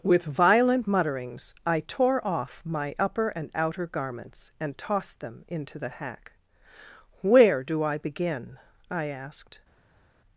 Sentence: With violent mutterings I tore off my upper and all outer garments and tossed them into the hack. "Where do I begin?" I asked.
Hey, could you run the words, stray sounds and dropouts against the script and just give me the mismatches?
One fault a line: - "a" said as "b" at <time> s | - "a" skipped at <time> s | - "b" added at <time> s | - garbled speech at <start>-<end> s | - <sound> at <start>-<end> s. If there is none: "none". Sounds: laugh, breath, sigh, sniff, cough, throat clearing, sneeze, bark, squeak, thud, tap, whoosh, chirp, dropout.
- "all" skipped at 3.5 s